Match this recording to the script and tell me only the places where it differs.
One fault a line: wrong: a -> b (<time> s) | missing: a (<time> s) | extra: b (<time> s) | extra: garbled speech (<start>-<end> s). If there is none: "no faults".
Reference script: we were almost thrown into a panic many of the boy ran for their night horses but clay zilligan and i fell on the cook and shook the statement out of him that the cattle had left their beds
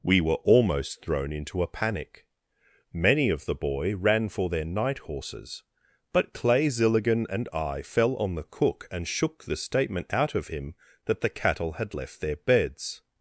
no faults